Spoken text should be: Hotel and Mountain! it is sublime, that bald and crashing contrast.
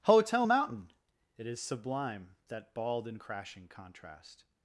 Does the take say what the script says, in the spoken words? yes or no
no